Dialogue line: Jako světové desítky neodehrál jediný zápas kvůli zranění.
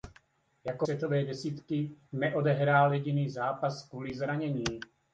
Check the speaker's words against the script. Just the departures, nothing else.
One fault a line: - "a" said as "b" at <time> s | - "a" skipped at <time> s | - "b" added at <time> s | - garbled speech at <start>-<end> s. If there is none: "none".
none